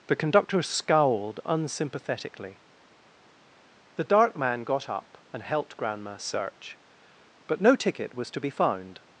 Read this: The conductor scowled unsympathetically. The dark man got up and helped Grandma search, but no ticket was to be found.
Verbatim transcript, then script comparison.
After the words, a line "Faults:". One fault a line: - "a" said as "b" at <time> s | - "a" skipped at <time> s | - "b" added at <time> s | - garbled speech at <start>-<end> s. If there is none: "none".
The conductor scowled unsympathetically. The dark man got up and helped Grandma search, but no ticket was to be found.
Faults:
none